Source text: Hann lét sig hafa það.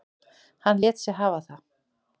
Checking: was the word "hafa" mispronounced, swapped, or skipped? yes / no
no